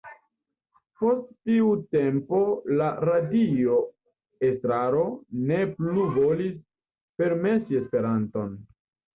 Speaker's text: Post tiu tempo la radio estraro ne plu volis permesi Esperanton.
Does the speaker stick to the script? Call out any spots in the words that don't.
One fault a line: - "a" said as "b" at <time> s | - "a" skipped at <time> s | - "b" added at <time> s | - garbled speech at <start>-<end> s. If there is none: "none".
none